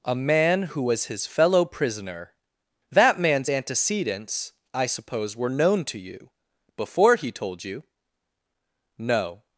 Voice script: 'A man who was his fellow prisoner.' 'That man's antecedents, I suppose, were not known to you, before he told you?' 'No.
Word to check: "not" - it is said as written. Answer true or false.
false